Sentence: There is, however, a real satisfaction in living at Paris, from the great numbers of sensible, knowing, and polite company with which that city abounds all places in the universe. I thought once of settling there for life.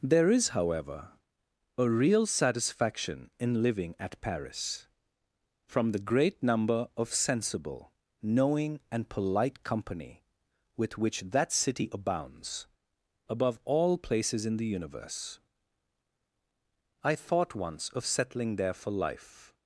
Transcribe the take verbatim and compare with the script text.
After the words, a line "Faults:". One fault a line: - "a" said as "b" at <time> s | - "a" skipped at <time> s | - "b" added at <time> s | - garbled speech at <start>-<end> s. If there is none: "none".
There is, however, a real satisfaction in living at Paris, from the great number of sensible, knowing, and polite company with which that city abounds above all places in the universe. I thought once of settling there for life.
Faults:
- "numbers" said as "number" at 6.4 s
- "above" added at 13.3 s